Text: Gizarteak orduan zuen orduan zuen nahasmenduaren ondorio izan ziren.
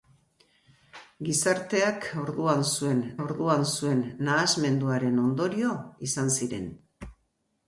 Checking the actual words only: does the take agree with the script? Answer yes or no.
yes